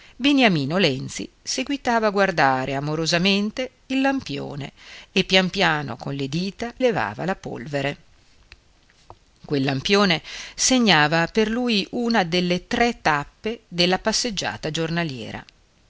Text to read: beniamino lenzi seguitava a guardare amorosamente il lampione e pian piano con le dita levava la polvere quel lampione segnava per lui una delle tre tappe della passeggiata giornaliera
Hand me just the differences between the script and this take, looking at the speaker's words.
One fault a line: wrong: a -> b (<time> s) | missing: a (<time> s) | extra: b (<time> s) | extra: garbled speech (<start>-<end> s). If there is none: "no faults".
no faults